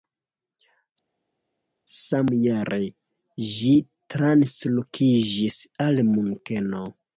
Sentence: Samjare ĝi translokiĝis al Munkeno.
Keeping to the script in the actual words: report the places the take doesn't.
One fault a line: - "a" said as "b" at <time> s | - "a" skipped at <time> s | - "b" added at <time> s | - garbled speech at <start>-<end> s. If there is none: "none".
none